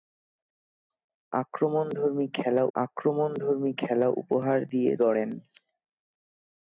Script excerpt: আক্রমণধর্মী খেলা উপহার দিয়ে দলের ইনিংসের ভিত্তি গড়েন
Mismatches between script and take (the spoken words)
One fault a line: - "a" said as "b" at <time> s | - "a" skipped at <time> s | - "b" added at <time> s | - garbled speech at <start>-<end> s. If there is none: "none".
- "আক্রমণধর্মী খেলা" added at 2.8 s
- "দলের ইনিংসের ভিত্তি" skipped at 4.9 s